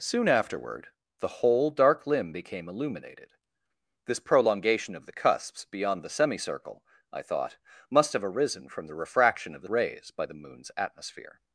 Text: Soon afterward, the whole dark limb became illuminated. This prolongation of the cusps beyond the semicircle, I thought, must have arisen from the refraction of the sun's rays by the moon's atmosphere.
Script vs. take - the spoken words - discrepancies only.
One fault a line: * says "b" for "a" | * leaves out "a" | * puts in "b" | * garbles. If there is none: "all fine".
* leaves out "sun's"